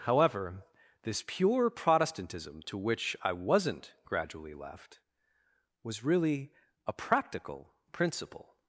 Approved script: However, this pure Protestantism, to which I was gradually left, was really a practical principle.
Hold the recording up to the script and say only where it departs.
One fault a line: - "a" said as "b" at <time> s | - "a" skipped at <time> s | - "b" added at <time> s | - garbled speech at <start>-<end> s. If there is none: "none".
- "was" said as "wasn't" at 3.3 s